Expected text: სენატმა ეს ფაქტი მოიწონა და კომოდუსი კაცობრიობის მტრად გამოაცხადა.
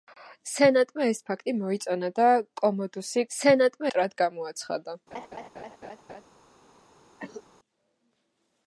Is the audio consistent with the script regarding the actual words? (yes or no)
no